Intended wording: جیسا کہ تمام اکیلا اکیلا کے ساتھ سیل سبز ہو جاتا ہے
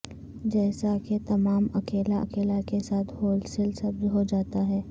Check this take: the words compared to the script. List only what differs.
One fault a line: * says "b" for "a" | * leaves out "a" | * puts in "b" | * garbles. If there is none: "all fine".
* puts in "ہول"